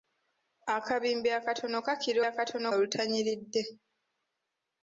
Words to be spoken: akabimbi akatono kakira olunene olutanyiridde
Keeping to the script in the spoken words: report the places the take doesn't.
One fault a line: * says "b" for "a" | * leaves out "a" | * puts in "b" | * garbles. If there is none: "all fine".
* says "akatono" for "olunene"